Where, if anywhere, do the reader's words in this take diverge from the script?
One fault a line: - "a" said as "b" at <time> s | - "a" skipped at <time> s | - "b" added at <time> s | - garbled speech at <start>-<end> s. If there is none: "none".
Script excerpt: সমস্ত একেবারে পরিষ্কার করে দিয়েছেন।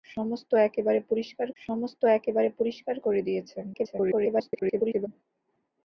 - "সমস্ত একেবারে পরিষ্কার" added at 1.6 s
- garbled speech at 3.7-5.1 s